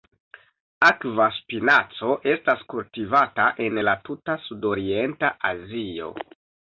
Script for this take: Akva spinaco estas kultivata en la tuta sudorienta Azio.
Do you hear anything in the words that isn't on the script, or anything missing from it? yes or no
no